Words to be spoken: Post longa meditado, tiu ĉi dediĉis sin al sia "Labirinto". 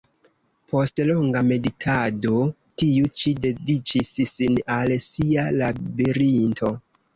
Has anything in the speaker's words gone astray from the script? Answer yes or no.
no